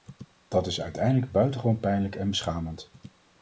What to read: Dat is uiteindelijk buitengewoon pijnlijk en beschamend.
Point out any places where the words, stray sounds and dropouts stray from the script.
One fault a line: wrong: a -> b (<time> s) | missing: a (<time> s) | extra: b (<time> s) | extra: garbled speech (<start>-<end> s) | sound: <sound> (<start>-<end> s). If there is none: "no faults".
no faults